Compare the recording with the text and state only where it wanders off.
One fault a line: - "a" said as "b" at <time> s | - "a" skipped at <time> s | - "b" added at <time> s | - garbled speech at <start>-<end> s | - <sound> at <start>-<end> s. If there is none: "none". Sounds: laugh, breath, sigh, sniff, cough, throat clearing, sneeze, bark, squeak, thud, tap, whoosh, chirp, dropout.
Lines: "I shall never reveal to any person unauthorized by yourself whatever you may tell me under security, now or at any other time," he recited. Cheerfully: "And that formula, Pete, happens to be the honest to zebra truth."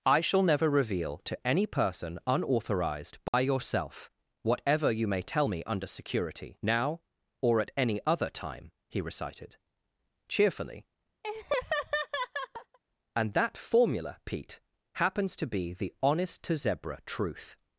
- dropout at 3.3-3.3 s
- laugh at 11.2-12.8 s